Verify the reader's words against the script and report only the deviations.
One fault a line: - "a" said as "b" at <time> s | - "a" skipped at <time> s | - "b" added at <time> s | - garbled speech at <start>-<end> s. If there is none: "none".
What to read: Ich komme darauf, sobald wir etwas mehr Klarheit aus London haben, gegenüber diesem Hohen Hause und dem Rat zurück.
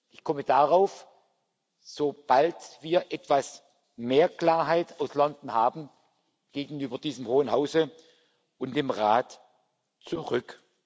none